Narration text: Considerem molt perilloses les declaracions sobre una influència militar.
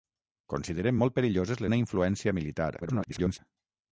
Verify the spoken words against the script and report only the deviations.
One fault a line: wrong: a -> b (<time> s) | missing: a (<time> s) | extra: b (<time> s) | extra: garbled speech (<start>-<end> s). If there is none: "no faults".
missing: les declaracions sobre (1.6 s)
extra: garbled speech (2.8-3.4 s)